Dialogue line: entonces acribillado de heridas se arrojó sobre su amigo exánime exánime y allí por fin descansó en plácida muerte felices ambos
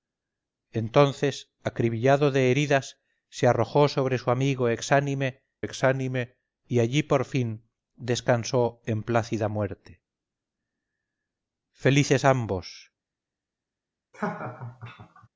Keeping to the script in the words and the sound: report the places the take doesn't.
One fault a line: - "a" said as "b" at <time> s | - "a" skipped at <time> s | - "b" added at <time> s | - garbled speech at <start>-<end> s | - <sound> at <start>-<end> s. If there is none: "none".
- laugh at 14.1-15.3 s